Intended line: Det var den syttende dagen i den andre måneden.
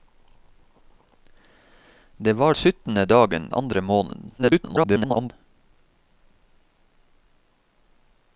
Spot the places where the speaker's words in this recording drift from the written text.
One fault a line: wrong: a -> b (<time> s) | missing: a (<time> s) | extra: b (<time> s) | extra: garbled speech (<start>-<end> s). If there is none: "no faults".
missing: den (2.5 s)
missing: i den (3.5 s)
extra: garbled speech (4.4-5.3 s)